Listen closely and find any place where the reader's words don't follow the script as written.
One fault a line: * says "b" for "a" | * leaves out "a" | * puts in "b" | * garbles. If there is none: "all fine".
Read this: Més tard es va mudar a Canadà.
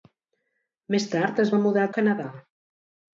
all fine